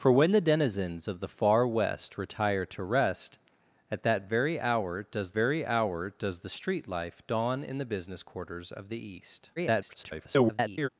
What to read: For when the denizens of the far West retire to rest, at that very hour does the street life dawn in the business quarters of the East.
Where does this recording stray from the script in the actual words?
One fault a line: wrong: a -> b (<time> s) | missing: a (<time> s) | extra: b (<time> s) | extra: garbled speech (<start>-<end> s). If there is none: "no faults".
extra: very hour does (5.3 s)
extra: garbled speech (9.6-10.9 s)